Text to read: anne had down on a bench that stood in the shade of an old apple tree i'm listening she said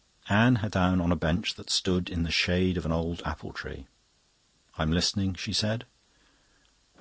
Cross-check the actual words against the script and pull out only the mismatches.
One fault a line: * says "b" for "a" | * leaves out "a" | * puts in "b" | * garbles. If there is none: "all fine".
all fine